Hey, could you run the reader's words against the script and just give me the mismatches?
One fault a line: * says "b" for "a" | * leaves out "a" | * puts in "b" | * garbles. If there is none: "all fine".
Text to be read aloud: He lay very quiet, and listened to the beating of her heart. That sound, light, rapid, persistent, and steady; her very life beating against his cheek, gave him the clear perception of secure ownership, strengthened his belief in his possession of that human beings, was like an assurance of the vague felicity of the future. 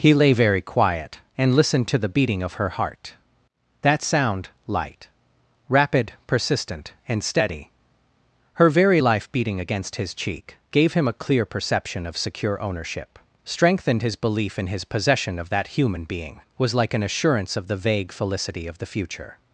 * says "a" for "the"
* says "being" for "beings"